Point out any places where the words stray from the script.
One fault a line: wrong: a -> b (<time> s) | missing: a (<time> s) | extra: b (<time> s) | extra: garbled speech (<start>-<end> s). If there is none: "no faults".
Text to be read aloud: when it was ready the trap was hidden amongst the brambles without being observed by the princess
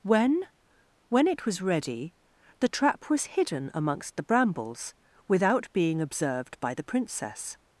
extra: when (1.1 s)